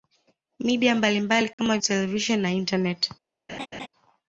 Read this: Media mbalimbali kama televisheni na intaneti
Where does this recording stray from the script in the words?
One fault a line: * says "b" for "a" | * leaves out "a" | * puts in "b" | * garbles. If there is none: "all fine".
all fine